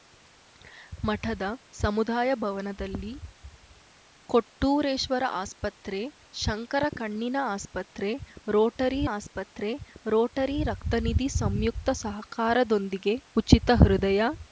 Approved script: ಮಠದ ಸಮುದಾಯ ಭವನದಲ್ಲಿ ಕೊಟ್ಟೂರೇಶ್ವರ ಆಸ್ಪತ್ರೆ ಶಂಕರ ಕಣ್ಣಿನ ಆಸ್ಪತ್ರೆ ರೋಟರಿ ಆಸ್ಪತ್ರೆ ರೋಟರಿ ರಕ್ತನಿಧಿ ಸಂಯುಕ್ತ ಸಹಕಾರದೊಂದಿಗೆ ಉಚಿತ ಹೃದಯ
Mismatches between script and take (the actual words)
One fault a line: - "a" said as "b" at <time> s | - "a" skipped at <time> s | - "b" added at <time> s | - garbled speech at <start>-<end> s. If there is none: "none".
none